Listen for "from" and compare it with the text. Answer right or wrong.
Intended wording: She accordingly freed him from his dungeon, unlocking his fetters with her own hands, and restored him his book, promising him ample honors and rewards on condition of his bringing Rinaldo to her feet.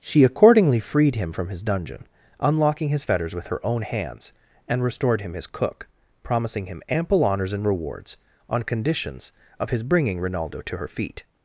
right